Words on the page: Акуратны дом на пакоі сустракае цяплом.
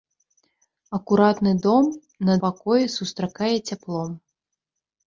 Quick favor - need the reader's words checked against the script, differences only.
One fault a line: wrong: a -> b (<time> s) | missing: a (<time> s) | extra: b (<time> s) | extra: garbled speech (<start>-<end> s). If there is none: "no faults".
no faults